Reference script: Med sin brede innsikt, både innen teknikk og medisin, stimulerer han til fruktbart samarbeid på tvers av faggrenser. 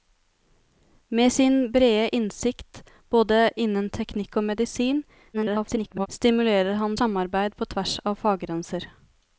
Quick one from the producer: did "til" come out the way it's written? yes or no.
no